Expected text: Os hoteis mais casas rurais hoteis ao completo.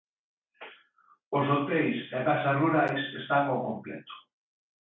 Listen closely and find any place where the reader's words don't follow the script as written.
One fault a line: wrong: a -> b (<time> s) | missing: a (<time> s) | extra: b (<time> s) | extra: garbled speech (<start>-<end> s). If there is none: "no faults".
wrong: mais -> e (2.1 s)
wrong: hoteis -> están (3.2 s)